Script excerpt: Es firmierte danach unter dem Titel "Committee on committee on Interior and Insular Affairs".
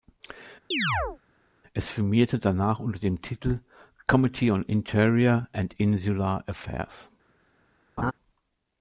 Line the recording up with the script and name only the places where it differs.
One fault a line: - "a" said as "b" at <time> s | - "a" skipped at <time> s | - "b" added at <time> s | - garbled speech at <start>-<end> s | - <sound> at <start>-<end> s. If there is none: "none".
- chirp at 0.7-1.2 s
- "committee on" skipped at 4.6 s
- laugh at 8.0-8.1 s